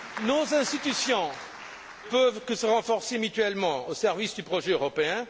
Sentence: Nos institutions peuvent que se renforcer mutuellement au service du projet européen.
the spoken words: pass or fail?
pass